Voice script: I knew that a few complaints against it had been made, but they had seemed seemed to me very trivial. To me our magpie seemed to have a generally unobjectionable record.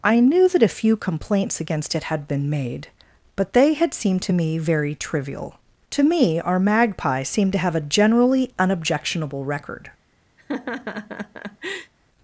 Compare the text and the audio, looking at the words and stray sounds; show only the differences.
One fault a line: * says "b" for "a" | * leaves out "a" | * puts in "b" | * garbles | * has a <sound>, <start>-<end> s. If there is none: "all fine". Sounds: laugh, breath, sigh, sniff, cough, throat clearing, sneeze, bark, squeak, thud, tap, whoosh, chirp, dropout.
* leaves out "seemed"
* has a laugh, 10.4-11.9 s